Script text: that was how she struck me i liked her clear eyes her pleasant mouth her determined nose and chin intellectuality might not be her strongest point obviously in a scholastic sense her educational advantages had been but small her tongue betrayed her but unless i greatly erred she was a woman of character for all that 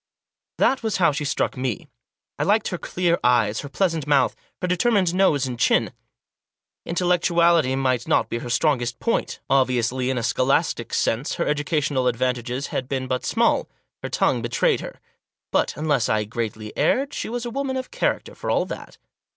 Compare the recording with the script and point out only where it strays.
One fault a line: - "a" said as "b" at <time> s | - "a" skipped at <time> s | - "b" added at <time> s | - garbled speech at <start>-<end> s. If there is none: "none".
none